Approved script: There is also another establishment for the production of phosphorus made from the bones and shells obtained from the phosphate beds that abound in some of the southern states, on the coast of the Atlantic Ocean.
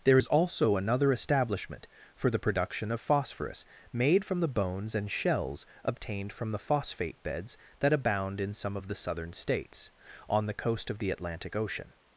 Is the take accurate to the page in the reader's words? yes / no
yes